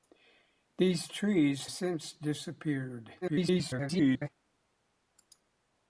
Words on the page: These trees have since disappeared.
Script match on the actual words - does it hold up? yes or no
no